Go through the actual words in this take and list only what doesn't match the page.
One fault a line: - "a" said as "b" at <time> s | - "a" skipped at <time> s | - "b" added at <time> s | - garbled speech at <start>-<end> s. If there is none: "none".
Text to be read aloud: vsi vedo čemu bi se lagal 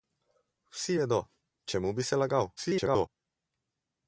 - garbled speech at 2.6-3.1 s